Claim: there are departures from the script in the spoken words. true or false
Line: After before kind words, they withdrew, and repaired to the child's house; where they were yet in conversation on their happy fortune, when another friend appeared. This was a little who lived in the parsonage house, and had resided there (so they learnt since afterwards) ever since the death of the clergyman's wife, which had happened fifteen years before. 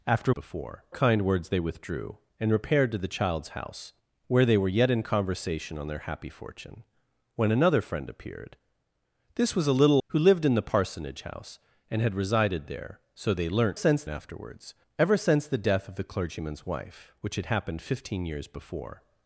false